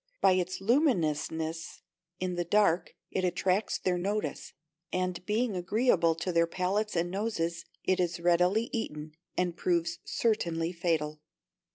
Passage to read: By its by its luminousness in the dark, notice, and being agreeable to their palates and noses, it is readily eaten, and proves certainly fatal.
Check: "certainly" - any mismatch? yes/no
no